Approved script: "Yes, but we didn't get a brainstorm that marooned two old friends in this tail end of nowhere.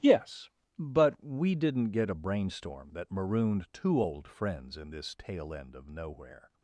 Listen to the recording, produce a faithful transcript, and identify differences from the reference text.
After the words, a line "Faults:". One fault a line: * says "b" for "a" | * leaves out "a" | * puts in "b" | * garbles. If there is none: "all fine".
"Yes, but we didn't get a brainstorm that marooned two old friends in this tail end of nowhere.
Faults:
all fine